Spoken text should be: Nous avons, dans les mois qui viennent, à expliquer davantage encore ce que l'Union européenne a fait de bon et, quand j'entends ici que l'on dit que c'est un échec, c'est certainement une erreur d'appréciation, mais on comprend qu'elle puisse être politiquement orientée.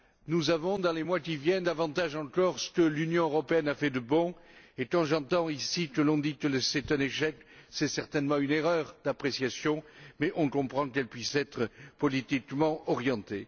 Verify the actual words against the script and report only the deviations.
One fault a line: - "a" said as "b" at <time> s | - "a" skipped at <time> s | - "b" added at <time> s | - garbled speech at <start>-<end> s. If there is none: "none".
- "à expliquer" skipped at 1.7 s